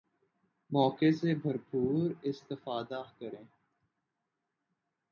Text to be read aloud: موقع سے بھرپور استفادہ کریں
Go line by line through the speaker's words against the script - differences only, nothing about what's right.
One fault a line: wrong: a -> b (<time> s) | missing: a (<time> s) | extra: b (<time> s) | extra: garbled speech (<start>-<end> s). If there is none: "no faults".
no faults